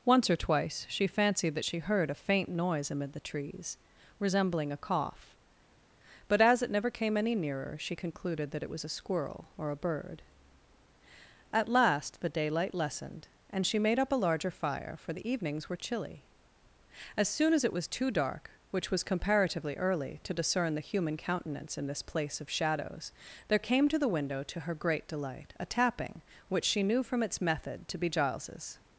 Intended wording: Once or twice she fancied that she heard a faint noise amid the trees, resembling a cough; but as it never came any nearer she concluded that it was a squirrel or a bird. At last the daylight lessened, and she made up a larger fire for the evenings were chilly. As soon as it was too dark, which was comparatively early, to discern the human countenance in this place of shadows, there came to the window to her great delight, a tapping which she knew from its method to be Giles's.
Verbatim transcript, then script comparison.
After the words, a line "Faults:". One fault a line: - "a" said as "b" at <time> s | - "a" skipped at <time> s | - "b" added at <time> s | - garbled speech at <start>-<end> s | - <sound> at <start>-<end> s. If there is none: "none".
Once or twice she fancied that she heard a faint noise amid the trees, resembling a cough; but as it never came any nearer she concluded that it was a squirrel or a bird. At last the daylight lessened, and she made up a larger fire for the evenings were chilly. As soon as it was too dark, which was comparatively early, to discern the human countenance in this place of shadows, there came to the window to her great delight, a tapping which she knew from its method to be Giles's.
Faults:
none